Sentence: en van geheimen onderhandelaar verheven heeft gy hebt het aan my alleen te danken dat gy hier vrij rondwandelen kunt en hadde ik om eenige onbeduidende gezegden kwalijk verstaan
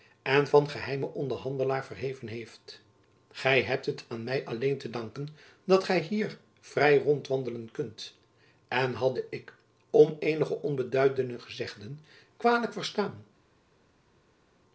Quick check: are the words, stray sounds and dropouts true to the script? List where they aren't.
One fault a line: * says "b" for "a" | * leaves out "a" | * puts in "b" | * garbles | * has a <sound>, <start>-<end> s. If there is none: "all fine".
all fine